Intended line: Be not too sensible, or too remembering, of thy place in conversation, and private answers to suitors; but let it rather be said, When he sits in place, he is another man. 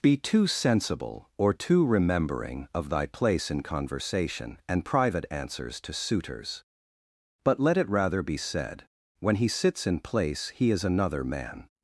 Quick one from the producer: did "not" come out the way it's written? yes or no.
no